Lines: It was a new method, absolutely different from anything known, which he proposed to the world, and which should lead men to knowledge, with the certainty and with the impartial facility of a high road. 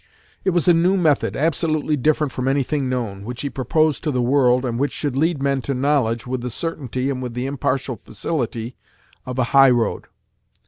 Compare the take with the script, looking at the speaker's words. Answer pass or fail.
pass